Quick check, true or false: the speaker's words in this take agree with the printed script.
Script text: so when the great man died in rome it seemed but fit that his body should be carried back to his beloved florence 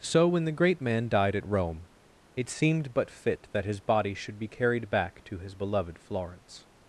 false